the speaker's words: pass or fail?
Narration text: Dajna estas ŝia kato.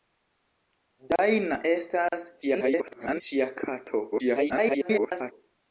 fail